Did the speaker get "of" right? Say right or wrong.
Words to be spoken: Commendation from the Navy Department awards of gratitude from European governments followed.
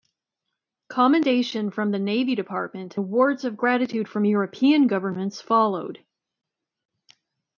right